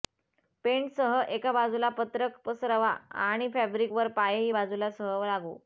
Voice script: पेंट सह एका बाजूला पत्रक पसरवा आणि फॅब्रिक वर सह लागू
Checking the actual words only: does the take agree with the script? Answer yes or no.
no